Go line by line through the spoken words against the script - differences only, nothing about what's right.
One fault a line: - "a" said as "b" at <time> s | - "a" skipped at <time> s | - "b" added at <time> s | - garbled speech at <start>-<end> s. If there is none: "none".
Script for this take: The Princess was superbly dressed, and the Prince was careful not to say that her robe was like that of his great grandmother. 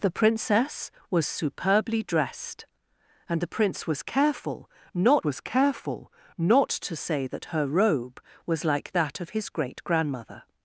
- "was careful not" added at 5.2 s